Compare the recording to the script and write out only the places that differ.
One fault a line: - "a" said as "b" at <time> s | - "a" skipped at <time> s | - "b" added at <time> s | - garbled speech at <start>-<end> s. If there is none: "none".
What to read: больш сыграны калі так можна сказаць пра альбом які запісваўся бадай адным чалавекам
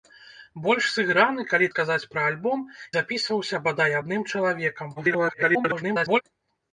- "так можна" skipped at 1.7 s
- "які" skipped at 2.6 s
- garbled speech at 5.0-6.2 s